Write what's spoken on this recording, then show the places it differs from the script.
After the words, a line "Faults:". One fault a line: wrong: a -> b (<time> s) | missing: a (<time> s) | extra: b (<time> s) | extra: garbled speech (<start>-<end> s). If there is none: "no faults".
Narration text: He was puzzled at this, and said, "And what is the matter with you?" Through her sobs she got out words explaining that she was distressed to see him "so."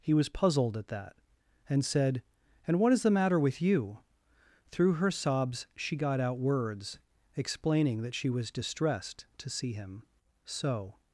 He was puzzled at that, and said, "And what is the matter with you?" Through her sobs she got out words explaining that she was distressed to see him "so."
Faults:
wrong: this -> that (0.9 s)